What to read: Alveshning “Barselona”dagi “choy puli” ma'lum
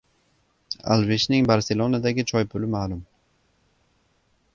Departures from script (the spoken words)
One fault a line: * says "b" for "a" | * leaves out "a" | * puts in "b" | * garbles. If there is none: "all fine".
all fine